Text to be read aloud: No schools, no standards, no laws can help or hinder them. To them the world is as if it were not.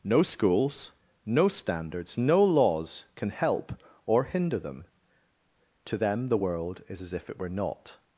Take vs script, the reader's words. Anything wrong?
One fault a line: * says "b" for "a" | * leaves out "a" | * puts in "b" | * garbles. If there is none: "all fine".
all fine